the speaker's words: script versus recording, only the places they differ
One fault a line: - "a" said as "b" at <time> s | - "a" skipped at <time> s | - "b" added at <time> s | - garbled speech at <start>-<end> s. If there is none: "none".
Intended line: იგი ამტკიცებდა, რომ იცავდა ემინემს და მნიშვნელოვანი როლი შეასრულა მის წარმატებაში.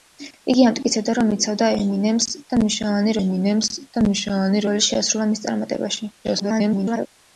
- "ემინემს და მნიშვნელოვანი" added at 3.2 s
- garbled speech at 6.2-7.1 s